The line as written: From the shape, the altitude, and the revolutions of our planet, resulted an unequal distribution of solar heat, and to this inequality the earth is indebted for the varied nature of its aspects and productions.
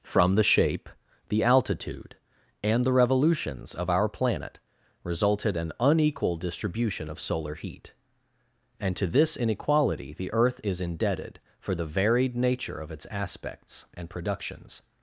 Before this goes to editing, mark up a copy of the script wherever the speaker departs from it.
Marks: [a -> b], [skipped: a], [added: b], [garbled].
From the shape, the altitude, and the revolutions of our planet, resulted an unequal distribution of solar heat, and to this inequality the earth is indebted for the varied nature of its aspects and productions.